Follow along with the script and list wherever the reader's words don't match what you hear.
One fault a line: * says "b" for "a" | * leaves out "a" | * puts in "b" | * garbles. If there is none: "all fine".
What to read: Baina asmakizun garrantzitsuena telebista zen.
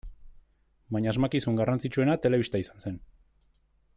* puts in "izan"